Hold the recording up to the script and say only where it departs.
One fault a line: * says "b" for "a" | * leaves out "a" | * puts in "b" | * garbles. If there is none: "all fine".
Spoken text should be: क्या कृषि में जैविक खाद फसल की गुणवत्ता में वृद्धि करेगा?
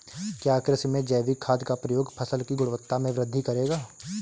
* puts in "का प्रयोग"